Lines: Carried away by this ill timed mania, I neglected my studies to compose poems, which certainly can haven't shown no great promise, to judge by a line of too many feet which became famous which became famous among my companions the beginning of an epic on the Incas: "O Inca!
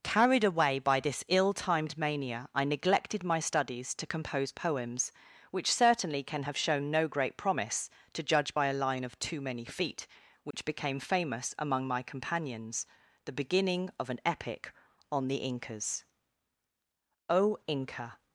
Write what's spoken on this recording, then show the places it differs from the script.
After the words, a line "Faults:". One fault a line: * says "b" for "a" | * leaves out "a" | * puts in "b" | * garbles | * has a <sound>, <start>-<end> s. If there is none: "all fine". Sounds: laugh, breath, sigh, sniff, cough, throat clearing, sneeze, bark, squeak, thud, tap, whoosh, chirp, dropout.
Carried away by this ill timed mania, I neglected my studies to compose poems, which certainly can have shown no great promise, to judge by a line of too many feet which became famous among my companions the beginning of an epic on the Incas: "O Inca!
Faults:
* says "have" for "haven't"
* has a dropout, 10.5-10.5 s
* leaves out "which became famous"